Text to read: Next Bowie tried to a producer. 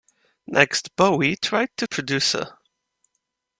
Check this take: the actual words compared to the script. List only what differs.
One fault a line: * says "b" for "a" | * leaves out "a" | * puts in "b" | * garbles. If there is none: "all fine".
all fine